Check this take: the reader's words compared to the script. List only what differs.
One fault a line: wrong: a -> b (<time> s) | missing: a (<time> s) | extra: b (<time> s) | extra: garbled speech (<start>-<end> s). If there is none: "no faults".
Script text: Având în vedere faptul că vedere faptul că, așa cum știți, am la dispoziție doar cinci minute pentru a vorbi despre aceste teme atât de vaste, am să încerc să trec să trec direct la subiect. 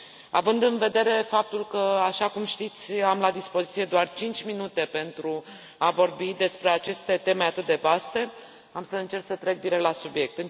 missing: vedere faptul că (2.0 s)
missing: să trec (9.6 s)